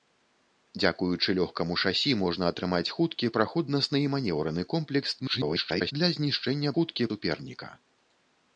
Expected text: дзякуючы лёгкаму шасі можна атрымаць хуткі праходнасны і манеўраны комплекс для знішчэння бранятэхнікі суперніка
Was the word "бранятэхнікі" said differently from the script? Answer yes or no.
yes